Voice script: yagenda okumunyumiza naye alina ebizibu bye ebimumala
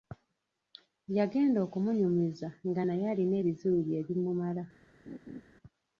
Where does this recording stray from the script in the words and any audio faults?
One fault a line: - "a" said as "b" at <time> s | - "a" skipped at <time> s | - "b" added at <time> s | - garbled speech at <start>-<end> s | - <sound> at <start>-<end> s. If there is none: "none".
- "nga" added at 2.7 s
- laugh at 5.1-5.4 s